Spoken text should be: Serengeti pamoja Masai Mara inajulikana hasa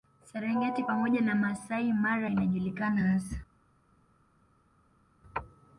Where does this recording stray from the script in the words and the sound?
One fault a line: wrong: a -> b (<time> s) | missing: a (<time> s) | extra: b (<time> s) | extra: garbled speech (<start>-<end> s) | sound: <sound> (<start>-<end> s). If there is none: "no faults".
extra: na (1.2 s)